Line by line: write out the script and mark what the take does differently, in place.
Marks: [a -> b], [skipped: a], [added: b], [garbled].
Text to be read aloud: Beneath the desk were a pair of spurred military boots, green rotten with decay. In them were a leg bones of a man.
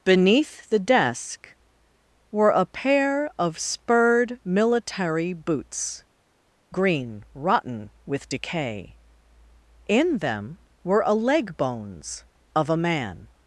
Beneath the desk were a pair of spurred military boots, green rotten with decay. In them were a leg bones of a man.